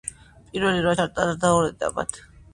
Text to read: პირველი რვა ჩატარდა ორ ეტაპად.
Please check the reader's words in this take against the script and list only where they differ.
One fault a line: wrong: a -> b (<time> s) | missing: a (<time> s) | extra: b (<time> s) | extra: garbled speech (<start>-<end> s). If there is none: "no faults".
no faults